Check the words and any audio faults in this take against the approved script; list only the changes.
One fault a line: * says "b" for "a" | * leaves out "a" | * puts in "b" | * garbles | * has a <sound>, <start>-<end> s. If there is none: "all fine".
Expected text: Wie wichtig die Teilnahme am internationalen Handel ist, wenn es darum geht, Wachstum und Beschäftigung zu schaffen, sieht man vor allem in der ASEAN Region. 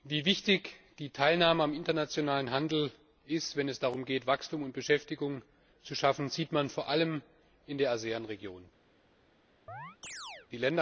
* has a chirp, 9.7-10.5 s